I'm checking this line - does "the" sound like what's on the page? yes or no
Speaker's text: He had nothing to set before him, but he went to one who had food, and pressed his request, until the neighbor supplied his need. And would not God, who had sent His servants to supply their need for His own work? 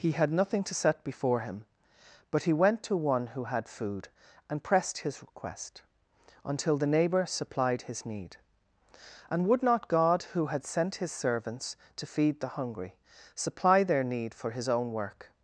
yes